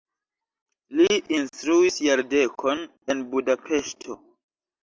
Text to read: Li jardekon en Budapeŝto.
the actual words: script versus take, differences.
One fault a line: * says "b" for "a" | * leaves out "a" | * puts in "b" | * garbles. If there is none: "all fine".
* puts in "instruis"